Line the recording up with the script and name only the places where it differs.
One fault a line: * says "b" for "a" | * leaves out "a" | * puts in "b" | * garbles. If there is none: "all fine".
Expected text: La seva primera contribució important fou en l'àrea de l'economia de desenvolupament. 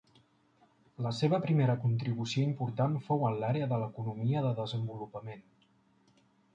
all fine